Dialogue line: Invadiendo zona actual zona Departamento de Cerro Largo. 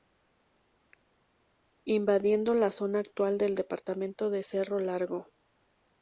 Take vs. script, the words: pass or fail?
fail